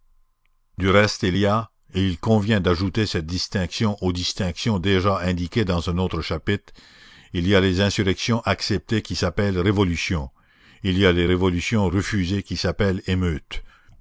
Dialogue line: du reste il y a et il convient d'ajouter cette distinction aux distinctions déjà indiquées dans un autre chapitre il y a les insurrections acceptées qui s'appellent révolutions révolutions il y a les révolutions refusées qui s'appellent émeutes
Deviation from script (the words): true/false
true